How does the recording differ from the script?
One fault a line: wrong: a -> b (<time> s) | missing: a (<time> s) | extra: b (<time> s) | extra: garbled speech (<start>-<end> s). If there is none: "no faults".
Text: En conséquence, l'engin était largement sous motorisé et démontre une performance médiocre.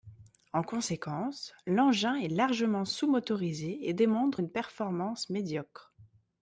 wrong: était -> est (2.1 s)